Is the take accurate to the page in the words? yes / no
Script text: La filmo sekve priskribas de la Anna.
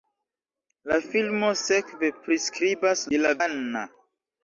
yes